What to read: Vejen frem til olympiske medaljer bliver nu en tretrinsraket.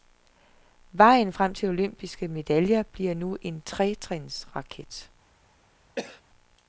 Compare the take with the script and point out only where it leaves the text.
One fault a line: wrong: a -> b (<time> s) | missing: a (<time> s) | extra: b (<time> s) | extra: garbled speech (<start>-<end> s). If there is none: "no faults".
no faults